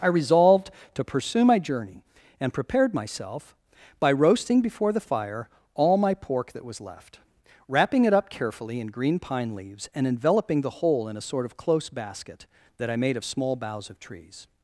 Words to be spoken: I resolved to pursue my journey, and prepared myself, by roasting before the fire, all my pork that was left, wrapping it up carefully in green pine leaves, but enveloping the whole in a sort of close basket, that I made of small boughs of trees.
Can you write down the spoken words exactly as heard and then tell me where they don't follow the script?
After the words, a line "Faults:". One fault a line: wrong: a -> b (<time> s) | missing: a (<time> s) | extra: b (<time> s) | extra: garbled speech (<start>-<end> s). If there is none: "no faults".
I resolved to pursue my journey, and prepared myself, by roasting before the fire, all my pork that was left, wrapping it up carefully in green pine leaves, and enveloping the whole in a sort of close basket, that I made of small boughs of trees.
Faults:
wrong: but -> and (9.9 s)